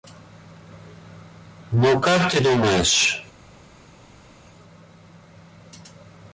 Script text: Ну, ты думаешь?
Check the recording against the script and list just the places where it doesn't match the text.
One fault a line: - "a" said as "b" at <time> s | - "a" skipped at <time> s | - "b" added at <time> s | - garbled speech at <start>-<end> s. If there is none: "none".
- "как" added at 2.0 s